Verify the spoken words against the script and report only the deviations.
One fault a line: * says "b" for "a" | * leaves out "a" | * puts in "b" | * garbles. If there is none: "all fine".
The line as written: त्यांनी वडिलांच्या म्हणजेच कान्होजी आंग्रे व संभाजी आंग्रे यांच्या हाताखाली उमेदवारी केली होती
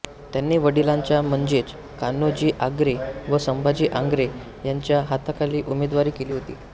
all fine